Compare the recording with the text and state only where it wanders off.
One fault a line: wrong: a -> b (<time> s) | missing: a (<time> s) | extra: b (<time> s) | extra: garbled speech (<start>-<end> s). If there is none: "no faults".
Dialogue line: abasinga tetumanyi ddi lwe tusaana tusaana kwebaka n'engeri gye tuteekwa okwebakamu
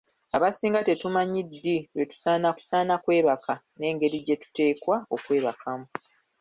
no faults